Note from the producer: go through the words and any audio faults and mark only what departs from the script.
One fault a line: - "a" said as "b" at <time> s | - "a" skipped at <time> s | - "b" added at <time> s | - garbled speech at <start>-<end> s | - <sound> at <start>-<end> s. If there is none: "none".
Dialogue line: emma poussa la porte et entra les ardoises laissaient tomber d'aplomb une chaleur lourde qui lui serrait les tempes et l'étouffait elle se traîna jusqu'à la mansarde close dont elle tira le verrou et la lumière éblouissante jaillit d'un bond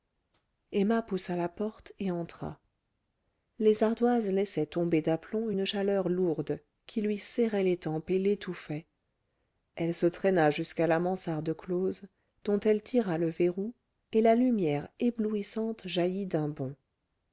none